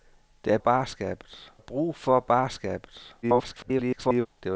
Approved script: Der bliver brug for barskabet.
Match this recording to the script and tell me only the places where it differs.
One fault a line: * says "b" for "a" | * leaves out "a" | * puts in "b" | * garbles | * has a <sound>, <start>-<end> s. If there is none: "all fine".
* says "barskabet" for "bliver"
* garbles